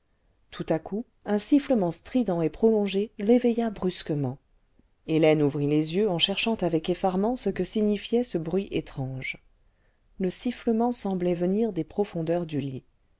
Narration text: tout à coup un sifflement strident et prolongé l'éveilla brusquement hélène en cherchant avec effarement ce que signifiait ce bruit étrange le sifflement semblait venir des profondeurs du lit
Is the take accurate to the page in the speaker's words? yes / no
no